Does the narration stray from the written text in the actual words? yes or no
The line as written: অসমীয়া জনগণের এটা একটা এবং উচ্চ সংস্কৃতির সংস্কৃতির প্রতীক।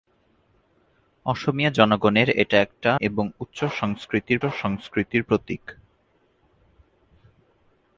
no